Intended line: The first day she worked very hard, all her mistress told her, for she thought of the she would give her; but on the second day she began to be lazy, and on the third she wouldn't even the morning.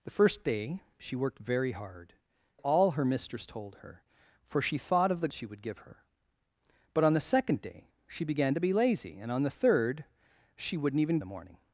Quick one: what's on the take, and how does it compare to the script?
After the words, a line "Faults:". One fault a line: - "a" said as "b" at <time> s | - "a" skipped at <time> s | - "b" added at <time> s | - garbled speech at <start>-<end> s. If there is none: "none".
The first day she worked very hard, all her mistress told her, for she thought of the she would give her; but on the second day she began to be lazy, and on the third she wouldn't even the morning.
Faults:
none